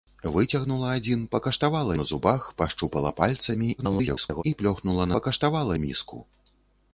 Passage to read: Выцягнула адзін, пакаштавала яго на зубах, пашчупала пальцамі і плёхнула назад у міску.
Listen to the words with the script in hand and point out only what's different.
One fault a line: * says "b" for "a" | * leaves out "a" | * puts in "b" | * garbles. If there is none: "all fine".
* leaves out "яго"
* garbles
* says "пакаштавала" for "назад"